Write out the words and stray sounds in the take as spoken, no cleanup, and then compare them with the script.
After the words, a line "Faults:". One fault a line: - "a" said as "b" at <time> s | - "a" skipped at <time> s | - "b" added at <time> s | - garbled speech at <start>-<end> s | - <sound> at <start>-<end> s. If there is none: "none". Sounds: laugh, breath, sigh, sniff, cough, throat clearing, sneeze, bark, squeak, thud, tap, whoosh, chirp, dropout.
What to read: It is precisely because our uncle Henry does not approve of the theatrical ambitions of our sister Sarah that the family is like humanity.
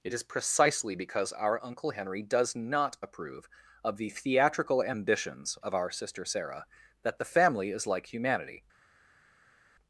It is precisely because our uncle Henry does not approve of the theatrical ambitions of our sister Sarah that the family is like humanity.
Faults:
none